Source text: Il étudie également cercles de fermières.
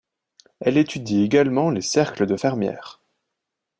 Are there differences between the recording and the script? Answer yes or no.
yes